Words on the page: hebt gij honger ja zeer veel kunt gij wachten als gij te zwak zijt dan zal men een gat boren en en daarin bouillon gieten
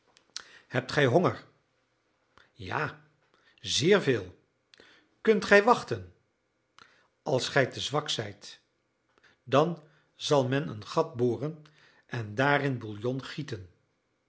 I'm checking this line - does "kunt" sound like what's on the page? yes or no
yes